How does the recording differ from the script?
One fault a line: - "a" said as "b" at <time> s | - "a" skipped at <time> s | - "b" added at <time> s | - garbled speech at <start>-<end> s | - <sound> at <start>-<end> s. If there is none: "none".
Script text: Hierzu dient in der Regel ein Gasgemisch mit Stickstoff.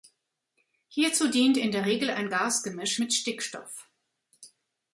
none